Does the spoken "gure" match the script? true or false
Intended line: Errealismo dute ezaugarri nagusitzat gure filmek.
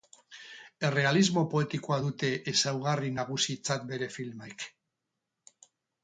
false